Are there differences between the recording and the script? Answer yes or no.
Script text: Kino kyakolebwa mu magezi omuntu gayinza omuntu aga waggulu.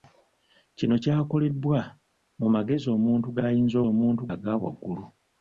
no